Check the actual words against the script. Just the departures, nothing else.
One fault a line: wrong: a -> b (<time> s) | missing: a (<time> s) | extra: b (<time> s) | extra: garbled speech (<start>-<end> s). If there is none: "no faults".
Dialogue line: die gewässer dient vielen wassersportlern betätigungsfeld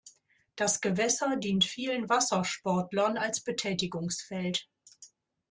wrong: die -> das (0.6 s)
extra: als (3.2 s)